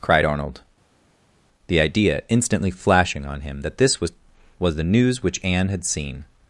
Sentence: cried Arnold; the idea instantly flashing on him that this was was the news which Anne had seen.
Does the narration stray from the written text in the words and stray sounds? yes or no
no